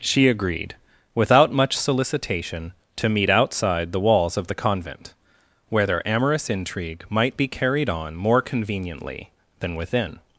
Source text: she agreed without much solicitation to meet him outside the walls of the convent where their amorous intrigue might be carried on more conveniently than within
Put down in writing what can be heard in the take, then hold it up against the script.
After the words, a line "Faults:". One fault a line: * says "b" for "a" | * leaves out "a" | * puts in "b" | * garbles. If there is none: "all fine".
she agreed without much solicitation to meet outside the walls of the convent where their amorous intrigue might be carried on more conveniently than within
Faults:
* leaves out "him"